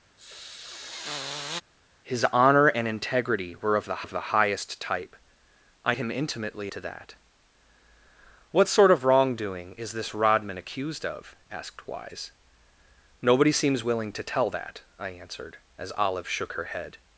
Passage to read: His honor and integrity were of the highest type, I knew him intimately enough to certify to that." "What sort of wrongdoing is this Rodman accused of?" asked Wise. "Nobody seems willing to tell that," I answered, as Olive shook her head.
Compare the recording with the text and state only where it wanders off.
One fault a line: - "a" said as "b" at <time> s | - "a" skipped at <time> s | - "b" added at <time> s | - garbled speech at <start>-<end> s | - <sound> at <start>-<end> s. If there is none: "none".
- sniff at 0.2-1.6 s
- "of the" added at 4.0 s
- "knew" skipped at 5.9 s
- "enough to certify" skipped at 6.7 s